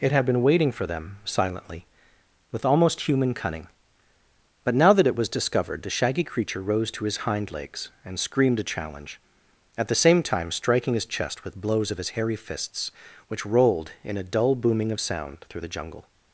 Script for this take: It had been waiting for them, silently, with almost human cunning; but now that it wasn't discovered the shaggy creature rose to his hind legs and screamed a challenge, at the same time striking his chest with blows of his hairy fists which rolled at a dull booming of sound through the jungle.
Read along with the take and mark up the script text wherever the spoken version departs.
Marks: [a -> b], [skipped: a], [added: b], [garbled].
It had been waiting for them, silently, with almost human cunning; but now that it [wasn't -> was] discovered the shaggy creature rose to his hind legs and screamed a challenge, at the same time striking his chest with blows of his hairy fists which rolled [at -> in] a dull booming of sound through the jungle.